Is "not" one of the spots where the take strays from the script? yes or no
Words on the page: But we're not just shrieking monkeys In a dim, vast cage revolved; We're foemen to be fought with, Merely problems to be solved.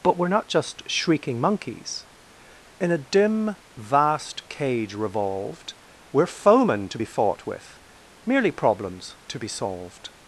no